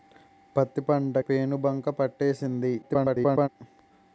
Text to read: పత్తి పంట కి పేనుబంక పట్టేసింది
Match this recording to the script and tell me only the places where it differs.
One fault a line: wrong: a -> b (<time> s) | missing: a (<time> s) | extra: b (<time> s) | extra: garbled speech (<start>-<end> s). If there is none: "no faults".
missing: కి (1.2 s)
extra: garbled speech (2.8-3.5 s)